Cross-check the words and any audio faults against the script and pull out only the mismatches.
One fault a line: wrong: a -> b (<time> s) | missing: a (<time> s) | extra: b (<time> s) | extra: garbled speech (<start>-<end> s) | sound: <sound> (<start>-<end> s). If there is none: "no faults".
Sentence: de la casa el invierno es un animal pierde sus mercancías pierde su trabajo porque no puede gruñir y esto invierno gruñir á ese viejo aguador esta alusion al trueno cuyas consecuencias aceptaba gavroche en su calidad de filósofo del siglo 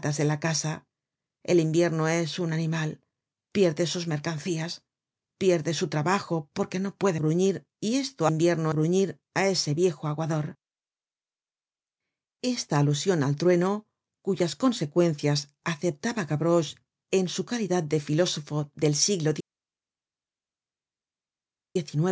no faults